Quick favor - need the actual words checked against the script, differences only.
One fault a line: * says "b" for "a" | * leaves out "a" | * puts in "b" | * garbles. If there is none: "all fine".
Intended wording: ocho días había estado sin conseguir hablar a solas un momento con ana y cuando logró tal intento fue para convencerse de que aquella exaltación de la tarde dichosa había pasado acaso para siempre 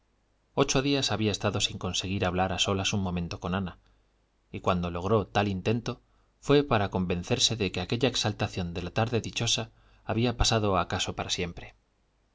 all fine